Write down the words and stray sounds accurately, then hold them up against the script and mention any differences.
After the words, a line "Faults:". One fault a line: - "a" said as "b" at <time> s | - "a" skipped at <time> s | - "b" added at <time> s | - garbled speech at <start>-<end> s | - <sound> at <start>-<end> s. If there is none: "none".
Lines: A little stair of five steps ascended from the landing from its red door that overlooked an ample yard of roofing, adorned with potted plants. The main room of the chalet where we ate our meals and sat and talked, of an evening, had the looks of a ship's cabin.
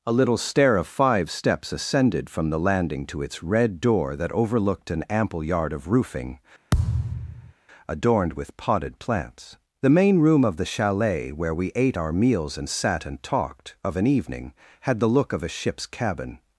A little stair of five steps ascended from the landing to its red door that overlooked an ample yard of roofing, adorned with potted plants. The main room of the chalet where we ate our meals and sat and talked, of an evening, had the look of a ship's cabin.
Faults:
- "from" said as "to" at 3.0 s
- thud at 6.7-7.5 s
- "looks" said as "look" at 15.1 s